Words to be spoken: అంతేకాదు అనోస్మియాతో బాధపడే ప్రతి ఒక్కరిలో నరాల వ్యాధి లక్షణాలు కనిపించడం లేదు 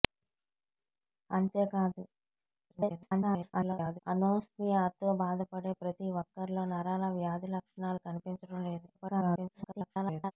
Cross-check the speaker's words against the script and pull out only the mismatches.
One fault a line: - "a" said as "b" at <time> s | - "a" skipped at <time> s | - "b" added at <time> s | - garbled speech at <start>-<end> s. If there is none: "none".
- garbled speech at 2.7-4.0 s
- garbled speech at 8.9-10.3 s